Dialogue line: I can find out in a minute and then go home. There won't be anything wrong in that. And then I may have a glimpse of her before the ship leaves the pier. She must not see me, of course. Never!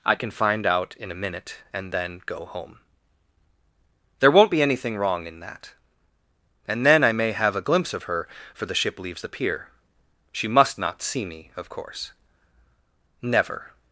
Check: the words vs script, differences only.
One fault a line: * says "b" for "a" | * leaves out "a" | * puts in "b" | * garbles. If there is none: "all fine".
* says "for" for "before"